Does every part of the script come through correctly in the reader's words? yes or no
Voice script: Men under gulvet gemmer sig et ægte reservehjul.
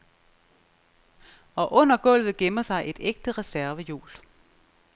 no